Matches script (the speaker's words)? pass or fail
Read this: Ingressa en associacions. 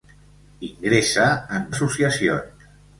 pass